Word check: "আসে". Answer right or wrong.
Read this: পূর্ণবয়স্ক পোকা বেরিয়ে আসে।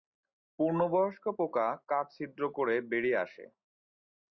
right